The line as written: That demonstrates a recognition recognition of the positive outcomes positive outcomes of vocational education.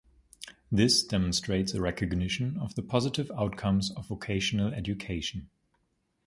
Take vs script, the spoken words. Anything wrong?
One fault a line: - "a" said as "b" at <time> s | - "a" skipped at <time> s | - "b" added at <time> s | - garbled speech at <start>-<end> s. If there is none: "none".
- "That" said as "This" at 0.7 s
- "recognition" skipped at 2.6 s
- "positive outcomes" skipped at 3.9 s